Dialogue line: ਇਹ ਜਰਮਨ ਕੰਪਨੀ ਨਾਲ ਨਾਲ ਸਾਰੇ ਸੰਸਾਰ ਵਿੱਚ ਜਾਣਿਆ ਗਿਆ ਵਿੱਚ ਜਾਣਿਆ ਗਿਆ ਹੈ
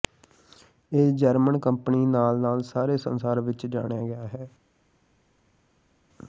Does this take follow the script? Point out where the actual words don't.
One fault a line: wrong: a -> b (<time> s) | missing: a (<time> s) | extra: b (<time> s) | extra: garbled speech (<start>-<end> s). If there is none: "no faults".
missing: ਵਿੱਚ ਜਾਣਿਆ ਗਿਆ (4.3 s)